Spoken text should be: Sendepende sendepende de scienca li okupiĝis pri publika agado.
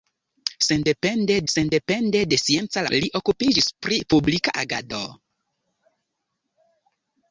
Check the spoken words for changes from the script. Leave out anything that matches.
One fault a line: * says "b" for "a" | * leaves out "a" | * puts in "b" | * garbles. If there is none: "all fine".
all fine